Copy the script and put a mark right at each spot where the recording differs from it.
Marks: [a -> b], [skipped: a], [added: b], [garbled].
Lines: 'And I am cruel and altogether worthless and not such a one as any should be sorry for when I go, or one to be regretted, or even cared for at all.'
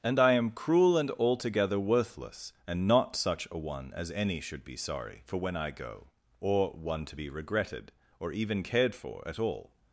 'And I am cruel and altogether worthless and not such a one as any should be sorry for when I go, or one to be regretted, or even cared for at all.'